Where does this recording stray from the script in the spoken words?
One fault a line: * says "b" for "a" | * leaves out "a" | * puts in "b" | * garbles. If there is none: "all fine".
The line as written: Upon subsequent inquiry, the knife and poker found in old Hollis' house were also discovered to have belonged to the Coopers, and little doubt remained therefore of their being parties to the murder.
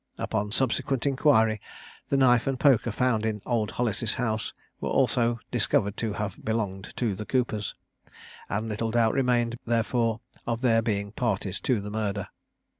all fine